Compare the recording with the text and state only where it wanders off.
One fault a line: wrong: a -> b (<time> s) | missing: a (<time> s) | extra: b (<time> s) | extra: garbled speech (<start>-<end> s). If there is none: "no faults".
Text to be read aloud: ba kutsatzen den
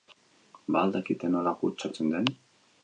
extra: al dakite nola (0.8 s)